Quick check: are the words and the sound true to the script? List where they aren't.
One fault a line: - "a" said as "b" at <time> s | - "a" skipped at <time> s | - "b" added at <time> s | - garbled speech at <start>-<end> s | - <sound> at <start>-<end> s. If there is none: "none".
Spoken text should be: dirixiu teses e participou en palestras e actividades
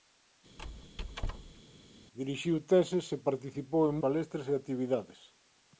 - squeak at 0.6-1.6 s